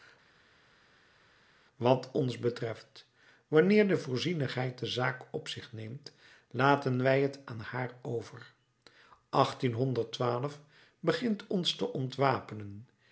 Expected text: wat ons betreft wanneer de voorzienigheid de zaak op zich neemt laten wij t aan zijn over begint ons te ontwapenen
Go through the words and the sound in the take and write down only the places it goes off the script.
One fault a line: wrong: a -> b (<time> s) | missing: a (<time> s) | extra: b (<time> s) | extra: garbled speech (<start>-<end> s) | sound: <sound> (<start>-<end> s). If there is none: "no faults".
wrong: zijn -> haar (7.6 s)